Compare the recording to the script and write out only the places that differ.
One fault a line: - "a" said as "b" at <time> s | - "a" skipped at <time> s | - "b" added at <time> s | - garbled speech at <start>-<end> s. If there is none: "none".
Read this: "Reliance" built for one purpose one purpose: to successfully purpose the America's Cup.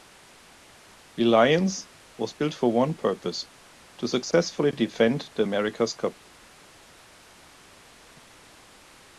- "was" added at 2.2 s
- "one purpose" skipped at 3.5 s
- "purpose" said as "defend" at 4.7 s